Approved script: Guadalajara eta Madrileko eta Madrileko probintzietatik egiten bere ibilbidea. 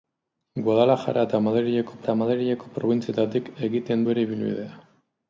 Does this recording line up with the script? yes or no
yes